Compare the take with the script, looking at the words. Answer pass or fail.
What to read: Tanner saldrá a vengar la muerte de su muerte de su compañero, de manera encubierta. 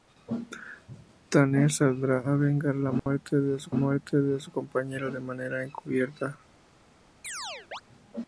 pass